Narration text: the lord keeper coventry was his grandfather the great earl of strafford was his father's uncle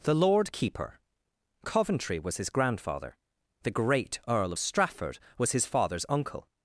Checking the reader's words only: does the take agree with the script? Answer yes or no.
yes